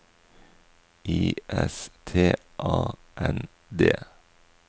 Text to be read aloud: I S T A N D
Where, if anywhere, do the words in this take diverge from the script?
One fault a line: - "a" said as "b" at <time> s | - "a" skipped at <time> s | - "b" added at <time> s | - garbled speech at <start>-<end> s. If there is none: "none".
none